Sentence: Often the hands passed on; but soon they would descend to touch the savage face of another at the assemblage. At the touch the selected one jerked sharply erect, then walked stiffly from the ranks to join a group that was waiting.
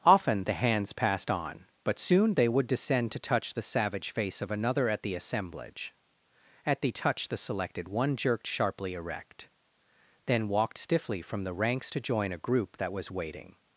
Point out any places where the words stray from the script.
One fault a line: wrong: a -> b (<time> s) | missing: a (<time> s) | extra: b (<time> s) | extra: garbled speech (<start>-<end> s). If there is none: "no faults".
no faults